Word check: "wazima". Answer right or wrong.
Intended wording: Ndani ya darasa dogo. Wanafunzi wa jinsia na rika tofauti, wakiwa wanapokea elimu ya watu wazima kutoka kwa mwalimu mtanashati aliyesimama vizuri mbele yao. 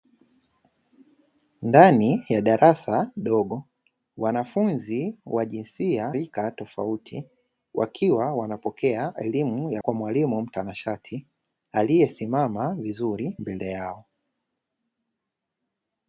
wrong